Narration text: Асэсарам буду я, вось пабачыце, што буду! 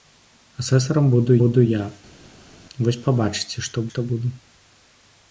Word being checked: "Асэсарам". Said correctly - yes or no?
yes